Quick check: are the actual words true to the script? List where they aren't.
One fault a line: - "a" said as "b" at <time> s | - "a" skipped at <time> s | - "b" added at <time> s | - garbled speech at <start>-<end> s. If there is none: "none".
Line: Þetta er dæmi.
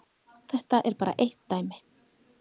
- "bara eitt" added at 1.0 s